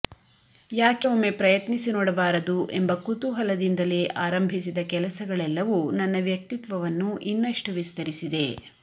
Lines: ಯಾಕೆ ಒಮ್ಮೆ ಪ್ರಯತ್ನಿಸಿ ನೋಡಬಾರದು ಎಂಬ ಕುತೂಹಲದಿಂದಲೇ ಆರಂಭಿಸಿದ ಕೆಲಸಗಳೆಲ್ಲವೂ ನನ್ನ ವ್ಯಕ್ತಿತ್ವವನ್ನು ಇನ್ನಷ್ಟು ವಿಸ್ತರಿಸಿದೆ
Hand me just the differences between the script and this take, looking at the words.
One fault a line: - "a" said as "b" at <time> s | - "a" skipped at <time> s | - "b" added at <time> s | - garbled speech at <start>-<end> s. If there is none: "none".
none